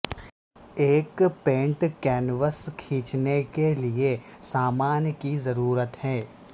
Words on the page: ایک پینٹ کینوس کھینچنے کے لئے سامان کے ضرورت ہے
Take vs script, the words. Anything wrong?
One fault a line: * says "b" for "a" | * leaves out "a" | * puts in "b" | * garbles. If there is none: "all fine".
* says "کی" for "کے"